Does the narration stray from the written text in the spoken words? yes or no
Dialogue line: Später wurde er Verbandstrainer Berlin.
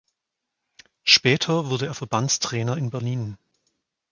yes